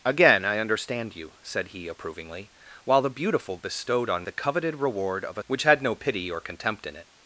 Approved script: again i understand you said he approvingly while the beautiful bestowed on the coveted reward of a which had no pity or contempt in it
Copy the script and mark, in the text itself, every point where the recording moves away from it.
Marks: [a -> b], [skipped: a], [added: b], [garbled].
again i understand you said he approvingly while the beautiful bestowed on the coveted reward of a which had no pity or contempt in it